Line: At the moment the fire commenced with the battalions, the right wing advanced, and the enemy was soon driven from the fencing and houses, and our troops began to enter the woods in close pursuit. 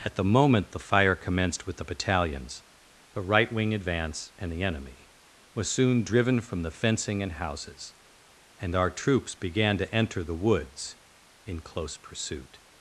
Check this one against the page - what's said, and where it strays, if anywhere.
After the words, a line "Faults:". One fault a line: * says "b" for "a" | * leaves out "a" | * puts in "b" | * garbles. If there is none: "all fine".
At the moment the fire commenced with the battalions, the right wing advance, and the enemy was soon driven from the fencing and houses, and our troops began to enter the woods in close pursuit.
Faults:
* says "advance" for "advanced"